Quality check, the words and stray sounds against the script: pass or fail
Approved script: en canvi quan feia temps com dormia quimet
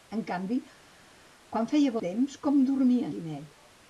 pass